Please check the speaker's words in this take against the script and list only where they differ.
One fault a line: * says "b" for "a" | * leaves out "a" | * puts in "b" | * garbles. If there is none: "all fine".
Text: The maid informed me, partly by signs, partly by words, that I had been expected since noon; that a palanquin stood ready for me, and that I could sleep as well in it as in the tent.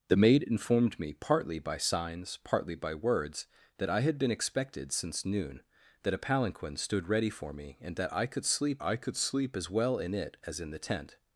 * puts in "I could sleep"